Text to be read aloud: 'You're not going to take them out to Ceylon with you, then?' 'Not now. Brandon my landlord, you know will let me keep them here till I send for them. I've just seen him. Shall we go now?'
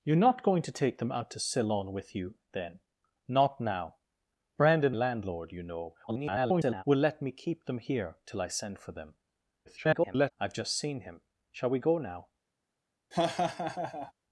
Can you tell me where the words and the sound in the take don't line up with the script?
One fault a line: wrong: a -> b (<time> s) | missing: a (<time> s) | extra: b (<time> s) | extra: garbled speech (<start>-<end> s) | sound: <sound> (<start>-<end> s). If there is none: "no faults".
missing: my (5.0 s)
extra: garbled speech (6.1-6.8 s)
extra: garbled speech (9.7-10.3 s)
sound: laugh (13.1-14.1 s)